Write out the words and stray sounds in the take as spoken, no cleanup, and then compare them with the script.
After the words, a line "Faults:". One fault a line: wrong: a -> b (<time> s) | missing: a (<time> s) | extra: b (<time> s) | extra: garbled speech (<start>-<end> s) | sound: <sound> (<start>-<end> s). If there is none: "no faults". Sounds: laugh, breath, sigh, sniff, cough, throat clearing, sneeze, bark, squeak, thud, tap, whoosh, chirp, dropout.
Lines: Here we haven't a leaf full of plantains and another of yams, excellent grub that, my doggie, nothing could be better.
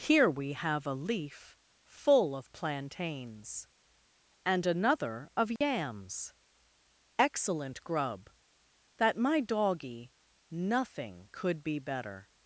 Here we have a leaf full of plantains and another of yams, excellent grub that, my doggie, nothing could be better.
Faults:
wrong: haven't -> have (0.5 s)
sound: dropout (5.6-5.6 s)